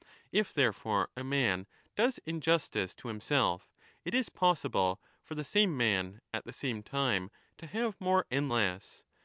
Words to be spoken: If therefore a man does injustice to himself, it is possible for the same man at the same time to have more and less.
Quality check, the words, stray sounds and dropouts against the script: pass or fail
pass